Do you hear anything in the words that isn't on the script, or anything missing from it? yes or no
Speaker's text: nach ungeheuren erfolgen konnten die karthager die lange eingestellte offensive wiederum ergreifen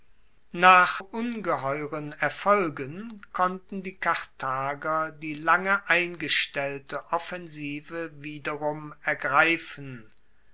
no